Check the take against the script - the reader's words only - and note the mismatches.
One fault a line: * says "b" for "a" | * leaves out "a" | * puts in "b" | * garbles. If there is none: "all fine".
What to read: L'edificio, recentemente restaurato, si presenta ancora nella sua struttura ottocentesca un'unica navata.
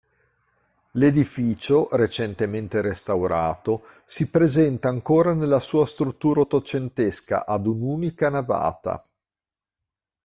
* puts in "ad"